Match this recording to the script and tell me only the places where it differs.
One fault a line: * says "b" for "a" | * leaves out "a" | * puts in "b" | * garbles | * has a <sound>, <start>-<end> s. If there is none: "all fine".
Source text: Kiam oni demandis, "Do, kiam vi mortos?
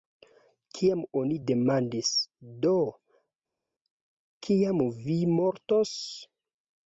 all fine